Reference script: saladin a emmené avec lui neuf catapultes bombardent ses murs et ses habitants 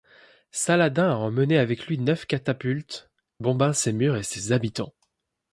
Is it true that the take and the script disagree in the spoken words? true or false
false